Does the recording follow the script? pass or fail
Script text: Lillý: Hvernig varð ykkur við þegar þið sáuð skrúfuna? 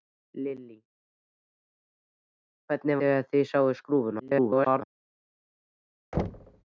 fail